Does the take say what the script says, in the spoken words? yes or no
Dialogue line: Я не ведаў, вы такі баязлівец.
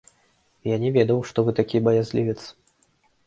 no